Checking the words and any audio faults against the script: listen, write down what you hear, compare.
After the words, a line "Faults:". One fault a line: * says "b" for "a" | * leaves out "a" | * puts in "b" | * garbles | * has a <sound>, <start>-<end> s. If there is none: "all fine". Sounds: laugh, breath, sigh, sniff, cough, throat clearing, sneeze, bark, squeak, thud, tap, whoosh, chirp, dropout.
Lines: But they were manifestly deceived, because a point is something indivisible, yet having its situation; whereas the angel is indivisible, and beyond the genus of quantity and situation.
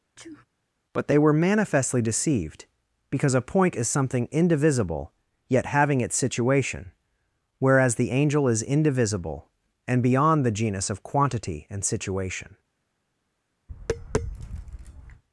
But they were manifestly deceived, because a point is something indivisible, yet having its situation; whereas the angel is indivisible, and beyond the genus of quantity and situation.
Faults:
* has a sneeze, 0.2-0.5 s
* has a tap, 13.7-15.2 s